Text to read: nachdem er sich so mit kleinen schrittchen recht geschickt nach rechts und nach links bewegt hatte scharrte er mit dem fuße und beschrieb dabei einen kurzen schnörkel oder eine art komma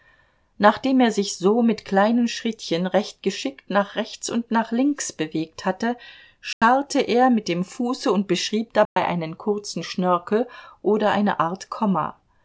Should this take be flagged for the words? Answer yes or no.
no